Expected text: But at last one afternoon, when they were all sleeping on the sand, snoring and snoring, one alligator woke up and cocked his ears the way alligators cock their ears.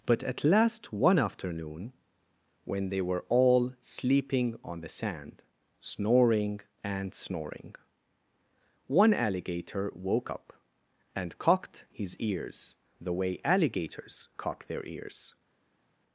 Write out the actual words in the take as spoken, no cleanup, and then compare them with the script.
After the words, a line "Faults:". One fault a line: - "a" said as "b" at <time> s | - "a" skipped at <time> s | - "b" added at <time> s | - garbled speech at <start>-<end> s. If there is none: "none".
But at last one afternoon, when they were all sleeping on the sand, snoring and snoring, one alligator woke up and cocked his ears the way alligators cock their ears.
Faults:
none